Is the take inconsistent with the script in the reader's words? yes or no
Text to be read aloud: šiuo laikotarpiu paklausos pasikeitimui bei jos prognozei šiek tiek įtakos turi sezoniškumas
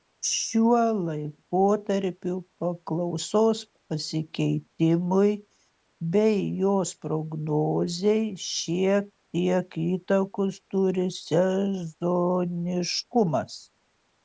no